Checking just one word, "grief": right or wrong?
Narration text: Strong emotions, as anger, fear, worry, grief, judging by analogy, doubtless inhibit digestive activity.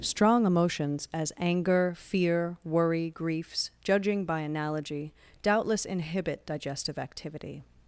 wrong